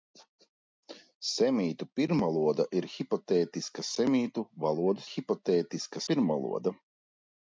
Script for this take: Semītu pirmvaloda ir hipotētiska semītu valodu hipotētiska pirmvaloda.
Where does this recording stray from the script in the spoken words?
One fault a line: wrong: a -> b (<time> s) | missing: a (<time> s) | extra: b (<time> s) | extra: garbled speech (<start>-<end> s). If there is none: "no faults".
no faults